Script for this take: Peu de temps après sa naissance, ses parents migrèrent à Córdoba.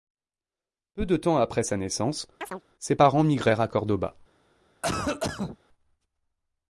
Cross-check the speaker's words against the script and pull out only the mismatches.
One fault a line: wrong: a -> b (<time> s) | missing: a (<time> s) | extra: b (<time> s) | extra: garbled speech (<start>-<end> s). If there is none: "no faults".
no faults